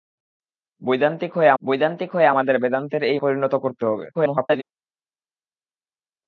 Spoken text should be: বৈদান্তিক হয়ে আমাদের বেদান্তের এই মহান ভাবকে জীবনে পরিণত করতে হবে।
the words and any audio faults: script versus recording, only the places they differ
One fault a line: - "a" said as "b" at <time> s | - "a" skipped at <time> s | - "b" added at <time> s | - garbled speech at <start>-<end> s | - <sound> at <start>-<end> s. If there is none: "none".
- "বৈদান্তিক হয়ে" added at 1.6 s
- "মহান ভাবকে জীবনে" skipped at 3.2 s
- garbled speech at 4.1-4.6 s